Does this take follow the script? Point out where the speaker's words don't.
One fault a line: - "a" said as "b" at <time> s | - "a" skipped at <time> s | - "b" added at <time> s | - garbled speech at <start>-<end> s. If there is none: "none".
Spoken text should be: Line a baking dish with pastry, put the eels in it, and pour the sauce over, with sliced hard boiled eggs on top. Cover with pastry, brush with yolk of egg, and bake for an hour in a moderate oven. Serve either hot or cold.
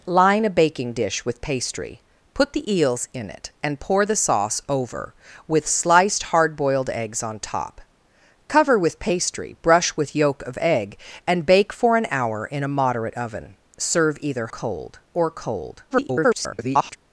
- "hot" said as "cold" at 14.5 s
- garbled speech at 15.9-17.0 s